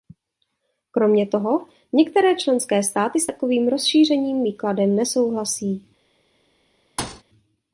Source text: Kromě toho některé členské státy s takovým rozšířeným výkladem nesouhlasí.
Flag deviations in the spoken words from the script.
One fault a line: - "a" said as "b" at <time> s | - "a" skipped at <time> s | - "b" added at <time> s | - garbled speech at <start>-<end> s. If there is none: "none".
none